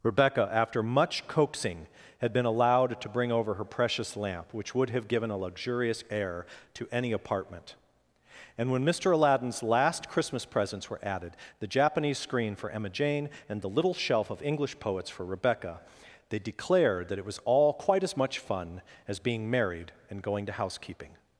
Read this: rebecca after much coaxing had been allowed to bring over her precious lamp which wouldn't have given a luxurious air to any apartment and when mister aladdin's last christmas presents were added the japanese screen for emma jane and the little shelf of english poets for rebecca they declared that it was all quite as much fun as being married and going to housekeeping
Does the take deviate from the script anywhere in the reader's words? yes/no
yes